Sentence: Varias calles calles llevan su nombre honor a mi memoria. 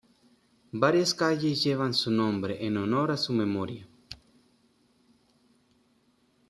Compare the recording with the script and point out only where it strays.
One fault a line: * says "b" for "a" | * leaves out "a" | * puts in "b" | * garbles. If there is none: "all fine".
* leaves out "calles"
* puts in "en"
* says "su" for "mi"